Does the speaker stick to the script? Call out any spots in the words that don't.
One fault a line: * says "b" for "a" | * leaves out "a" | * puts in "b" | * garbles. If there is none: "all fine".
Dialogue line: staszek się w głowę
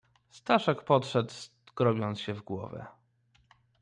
* puts in "podszedł skrobiąc"